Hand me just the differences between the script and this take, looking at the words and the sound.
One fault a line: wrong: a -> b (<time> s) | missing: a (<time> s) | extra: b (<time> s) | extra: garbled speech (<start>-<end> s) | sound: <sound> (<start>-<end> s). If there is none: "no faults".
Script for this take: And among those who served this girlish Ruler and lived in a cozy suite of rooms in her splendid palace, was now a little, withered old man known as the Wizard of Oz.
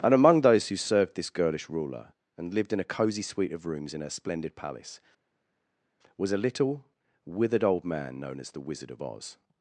missing: now (6.3 s)